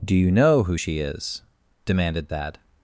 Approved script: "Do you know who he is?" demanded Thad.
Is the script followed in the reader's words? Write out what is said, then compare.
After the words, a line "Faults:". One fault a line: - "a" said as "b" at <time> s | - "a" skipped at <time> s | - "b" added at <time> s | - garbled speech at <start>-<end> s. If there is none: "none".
"Do you know who she is?" demanded Thad.
Faults:
- "he" said as "she" at 0.8 s